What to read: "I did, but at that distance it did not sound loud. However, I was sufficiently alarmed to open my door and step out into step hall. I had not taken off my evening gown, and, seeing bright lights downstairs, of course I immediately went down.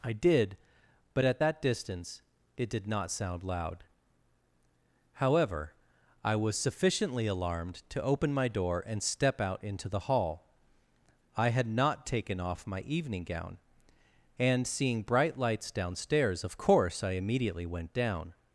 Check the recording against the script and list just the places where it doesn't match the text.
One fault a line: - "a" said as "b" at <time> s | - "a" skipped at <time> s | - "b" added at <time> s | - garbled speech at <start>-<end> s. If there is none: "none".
- "step" said as "the" at 9.9 s